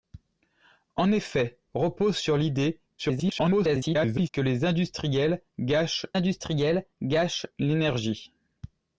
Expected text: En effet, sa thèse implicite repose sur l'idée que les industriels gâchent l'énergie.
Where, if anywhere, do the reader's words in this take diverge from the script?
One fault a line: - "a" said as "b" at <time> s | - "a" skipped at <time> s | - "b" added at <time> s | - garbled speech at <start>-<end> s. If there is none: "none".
- "sa thèse implicite" skipped at 1.6 s
- garbled speech at 3.0-4.3 s
- "industriels gâchent" added at 6.1 s